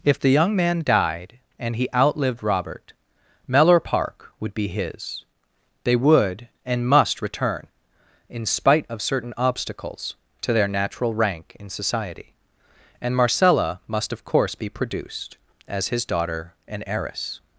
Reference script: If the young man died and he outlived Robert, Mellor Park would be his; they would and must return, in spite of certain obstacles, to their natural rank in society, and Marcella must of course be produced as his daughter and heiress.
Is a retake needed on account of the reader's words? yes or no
no